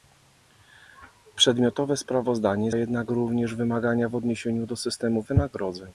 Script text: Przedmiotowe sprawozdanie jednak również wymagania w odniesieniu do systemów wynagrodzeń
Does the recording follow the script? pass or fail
pass